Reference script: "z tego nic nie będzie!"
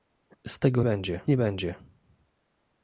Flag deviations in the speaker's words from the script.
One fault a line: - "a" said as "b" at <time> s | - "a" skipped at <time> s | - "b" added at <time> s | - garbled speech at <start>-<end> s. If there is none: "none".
- "nic" said as "będzie" at 0.8 s